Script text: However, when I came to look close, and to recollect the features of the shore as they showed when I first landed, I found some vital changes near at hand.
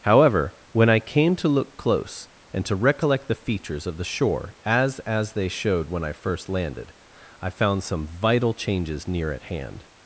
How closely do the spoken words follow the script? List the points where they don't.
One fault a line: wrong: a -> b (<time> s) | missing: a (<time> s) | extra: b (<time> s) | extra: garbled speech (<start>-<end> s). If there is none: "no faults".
extra: as (5.0 s)